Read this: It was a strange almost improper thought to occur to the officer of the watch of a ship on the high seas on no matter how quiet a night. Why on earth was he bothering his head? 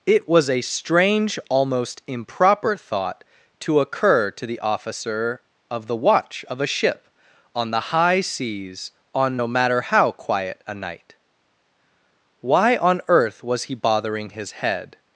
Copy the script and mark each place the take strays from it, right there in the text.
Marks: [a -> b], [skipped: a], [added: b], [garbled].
It was a strange almost improper thought to occur to the officer of the watch of a ship on the high seas on no matter how quiet a night. Why on earth was he bothering his head?